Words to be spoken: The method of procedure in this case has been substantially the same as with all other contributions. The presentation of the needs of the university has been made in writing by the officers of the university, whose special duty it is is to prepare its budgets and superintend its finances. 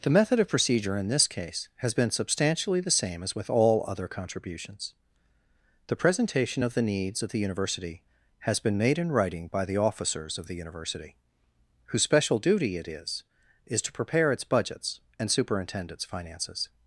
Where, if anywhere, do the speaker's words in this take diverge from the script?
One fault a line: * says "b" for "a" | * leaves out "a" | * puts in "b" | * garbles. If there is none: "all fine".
all fine